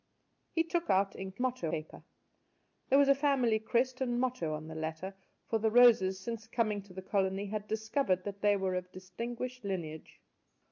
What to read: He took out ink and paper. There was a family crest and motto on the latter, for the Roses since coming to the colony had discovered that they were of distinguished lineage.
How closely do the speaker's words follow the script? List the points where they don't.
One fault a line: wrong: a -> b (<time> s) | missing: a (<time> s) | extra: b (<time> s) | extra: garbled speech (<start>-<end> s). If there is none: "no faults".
wrong: and -> motto (1.4 s)